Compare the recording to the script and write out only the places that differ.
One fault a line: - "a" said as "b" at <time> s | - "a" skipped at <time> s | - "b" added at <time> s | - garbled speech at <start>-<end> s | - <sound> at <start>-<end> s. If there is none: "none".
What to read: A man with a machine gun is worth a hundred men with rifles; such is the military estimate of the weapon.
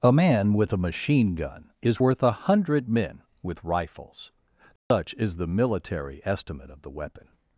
- dropout at 4.8-4.9 s